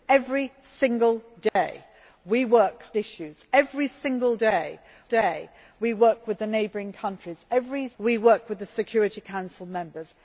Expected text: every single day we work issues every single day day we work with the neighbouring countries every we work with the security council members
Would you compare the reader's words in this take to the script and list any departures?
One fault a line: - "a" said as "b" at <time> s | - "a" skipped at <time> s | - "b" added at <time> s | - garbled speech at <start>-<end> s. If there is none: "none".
none